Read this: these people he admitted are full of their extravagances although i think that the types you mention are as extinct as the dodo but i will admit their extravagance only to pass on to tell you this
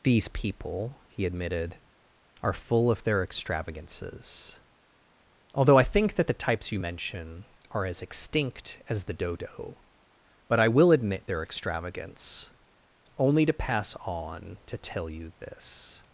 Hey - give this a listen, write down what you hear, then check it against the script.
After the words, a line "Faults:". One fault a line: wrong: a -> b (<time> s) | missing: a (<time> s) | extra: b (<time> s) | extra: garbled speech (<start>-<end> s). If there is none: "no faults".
these people he admitted are full of their extravagances although i think that the types you mention are as extinct as the dodo but i will admit their extravagance only to pass on to tell you this
Faults:
no faults